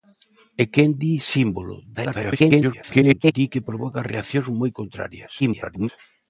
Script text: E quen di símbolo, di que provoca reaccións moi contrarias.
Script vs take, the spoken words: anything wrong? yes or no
yes